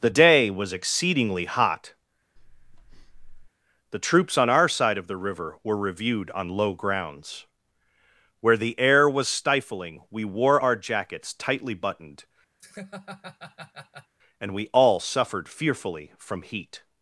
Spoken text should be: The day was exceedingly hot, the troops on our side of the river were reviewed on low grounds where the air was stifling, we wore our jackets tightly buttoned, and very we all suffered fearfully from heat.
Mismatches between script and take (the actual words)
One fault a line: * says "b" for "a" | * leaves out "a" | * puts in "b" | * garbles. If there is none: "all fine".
* leaves out "very"